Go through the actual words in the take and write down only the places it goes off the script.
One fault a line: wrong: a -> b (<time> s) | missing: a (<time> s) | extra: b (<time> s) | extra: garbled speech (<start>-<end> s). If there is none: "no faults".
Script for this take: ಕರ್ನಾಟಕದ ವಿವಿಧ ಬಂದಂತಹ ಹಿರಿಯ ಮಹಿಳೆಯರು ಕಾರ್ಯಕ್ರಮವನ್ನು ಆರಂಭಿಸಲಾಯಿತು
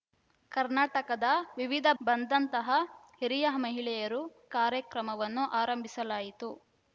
no faults